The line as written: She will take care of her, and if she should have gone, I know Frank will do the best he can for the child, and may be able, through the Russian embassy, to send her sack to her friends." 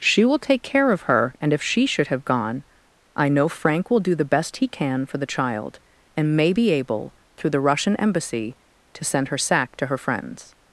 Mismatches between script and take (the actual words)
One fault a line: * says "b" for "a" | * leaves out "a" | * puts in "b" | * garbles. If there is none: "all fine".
all fine